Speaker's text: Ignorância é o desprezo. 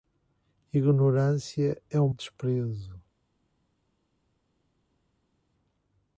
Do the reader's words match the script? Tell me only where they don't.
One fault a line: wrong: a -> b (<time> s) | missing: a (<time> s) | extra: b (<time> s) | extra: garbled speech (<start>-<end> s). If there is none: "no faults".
no faults